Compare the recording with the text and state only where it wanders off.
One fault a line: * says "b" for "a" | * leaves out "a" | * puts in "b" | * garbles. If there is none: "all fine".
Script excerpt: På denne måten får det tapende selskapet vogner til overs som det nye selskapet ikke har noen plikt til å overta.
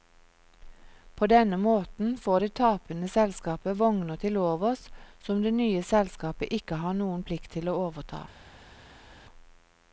all fine